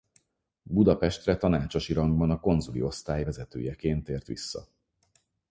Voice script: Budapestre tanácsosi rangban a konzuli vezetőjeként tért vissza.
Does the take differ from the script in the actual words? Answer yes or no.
yes